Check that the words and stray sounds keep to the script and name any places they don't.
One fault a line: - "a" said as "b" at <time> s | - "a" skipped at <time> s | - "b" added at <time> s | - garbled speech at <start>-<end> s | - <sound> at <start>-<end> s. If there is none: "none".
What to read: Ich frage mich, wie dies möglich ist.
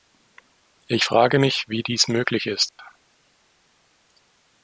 - dropout at 2.7-2.8 s